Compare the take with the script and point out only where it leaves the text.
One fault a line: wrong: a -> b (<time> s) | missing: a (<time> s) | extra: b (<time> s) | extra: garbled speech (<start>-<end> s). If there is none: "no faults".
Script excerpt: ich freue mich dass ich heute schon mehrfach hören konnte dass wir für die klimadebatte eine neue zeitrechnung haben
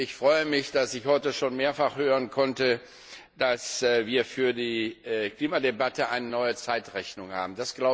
no faults